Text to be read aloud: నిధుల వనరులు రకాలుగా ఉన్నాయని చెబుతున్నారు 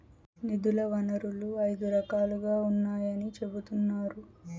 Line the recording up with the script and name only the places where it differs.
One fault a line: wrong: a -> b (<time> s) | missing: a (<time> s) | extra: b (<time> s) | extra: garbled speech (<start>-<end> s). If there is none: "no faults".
extra: ఐదు (1.6 s)